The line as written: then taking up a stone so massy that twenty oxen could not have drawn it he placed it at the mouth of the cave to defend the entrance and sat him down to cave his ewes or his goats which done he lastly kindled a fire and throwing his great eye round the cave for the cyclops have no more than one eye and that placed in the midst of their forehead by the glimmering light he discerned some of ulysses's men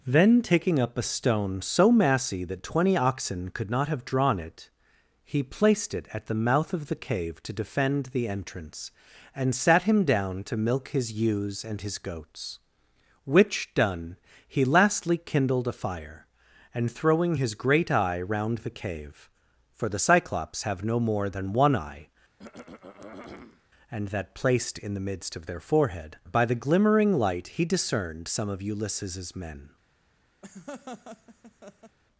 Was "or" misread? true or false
true